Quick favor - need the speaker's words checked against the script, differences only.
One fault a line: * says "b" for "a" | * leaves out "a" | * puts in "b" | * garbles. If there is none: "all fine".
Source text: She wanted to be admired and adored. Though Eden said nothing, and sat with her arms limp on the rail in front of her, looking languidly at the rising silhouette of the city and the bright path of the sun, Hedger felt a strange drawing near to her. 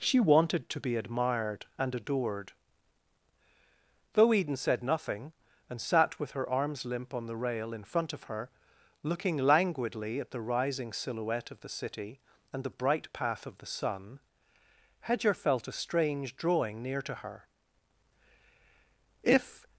* puts in "If"